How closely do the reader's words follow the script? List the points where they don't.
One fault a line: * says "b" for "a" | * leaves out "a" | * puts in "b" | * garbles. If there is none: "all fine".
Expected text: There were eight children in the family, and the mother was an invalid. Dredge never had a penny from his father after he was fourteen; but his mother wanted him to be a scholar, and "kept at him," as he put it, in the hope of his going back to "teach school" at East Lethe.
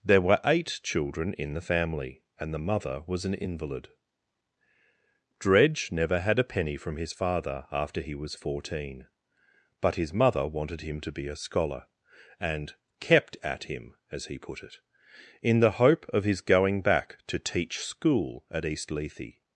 all fine